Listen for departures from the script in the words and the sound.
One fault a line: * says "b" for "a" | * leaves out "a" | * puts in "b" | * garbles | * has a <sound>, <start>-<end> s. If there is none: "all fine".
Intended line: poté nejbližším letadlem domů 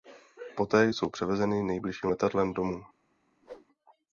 * puts in "jsou převezeny"
* has a whoosh, 3.4-3.7 s